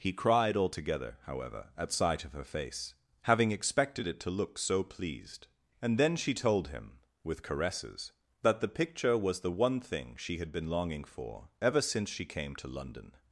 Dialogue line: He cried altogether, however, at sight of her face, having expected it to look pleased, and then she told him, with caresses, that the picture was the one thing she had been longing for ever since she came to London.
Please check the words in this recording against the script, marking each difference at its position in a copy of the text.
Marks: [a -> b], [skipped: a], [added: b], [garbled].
He cried altogether, however, at sight of her face, having expected it to look [added: so] pleased, and then she told him, with caresses, that the picture was the one thing she had been longing for ever since she came to London.